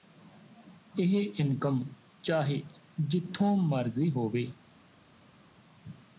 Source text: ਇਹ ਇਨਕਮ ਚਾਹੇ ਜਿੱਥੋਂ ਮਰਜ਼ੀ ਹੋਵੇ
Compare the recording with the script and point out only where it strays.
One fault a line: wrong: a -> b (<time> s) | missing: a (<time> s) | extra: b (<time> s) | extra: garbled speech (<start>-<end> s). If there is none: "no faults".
no faults